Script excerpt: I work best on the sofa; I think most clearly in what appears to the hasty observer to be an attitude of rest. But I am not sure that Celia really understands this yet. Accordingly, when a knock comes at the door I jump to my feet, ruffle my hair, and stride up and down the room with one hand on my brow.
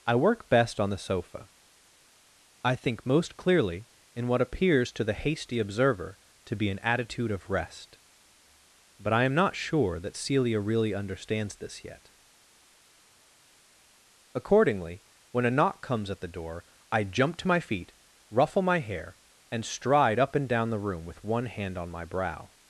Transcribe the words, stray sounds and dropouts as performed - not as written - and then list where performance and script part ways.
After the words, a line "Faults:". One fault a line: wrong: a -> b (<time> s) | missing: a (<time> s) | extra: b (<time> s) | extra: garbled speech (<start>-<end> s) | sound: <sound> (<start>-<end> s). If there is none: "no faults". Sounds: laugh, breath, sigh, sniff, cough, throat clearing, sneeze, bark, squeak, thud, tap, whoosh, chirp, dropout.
I work best on the sofa; I think most clearly in what appears to the hasty observer to be an attitude of rest. But I am not sure that Celia really understands this yet. Accordingly, when a knock comes at the door I jump to my feet, ruffle my hair, and stride up and down the room with one hand on my brow.
Faults:
no faults